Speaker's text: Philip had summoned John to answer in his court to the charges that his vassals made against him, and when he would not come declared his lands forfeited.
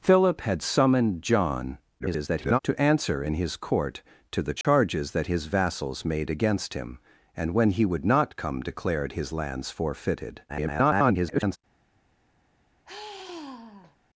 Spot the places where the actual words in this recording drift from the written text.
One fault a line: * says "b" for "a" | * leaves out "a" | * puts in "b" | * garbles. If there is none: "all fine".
* garbles
* garbles